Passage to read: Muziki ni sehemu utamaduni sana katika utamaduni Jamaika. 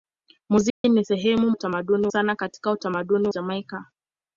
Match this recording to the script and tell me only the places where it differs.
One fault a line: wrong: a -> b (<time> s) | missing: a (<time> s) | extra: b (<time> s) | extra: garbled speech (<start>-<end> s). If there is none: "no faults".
no faults